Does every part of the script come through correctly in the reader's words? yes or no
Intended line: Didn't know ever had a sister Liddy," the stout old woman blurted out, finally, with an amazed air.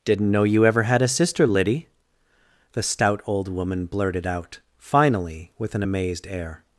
no